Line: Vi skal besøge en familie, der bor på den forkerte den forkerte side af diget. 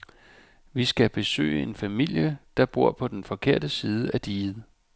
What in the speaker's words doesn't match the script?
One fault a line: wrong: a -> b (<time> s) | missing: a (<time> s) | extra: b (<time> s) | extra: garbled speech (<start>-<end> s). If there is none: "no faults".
missing: den forkerte (3.7 s)